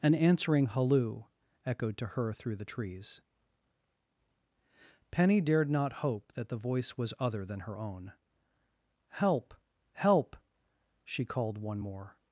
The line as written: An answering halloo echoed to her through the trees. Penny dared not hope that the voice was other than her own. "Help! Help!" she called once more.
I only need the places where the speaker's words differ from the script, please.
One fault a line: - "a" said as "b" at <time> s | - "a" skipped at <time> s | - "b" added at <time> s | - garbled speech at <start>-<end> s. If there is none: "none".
- "once" said as "one" at 11.6 s